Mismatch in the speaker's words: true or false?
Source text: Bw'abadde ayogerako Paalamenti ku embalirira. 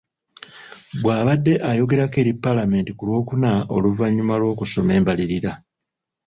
true